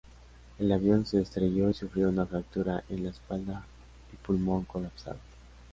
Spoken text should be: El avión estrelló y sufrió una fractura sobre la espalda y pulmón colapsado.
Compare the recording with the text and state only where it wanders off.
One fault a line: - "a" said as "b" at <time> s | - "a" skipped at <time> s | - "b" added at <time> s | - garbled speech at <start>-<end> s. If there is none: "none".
- "se" added at 1.1 s
- "sobre" said as "en" at 2.9 s